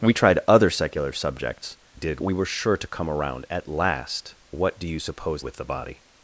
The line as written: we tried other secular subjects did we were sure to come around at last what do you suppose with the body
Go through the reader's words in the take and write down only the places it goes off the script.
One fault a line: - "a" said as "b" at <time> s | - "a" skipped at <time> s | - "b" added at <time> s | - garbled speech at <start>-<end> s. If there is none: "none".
none